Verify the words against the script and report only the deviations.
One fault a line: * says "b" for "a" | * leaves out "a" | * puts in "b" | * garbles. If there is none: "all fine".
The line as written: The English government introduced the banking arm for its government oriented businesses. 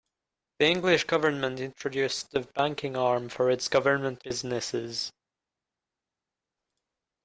* leaves out "oriented"